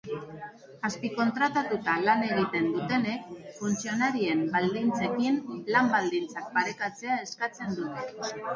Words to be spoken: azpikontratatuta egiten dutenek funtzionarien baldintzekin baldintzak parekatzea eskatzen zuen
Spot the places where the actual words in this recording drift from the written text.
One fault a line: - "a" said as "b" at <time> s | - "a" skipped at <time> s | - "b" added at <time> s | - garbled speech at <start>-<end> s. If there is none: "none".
- "lan" added at 2.0 s
- "lan" added at 5.8 s
- "zuen" said as "dute" at 7.8 s